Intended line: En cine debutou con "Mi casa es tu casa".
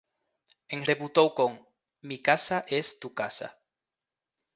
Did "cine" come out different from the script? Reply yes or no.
yes